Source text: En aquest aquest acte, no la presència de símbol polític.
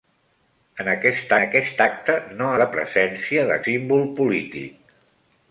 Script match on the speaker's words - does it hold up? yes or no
yes